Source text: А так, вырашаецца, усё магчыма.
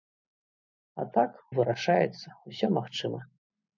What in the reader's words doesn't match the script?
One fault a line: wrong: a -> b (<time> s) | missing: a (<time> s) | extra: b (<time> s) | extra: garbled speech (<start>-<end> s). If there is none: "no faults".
no faults